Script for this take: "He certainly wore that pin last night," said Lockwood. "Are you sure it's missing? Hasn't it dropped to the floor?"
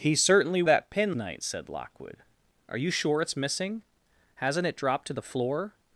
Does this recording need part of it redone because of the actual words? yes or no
yes